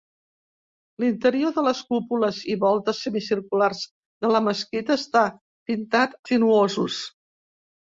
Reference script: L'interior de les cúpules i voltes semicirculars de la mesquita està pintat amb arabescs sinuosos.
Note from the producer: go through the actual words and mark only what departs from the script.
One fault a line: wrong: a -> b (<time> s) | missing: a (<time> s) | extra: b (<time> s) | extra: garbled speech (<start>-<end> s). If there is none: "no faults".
missing: amb arabescs (6.2 s)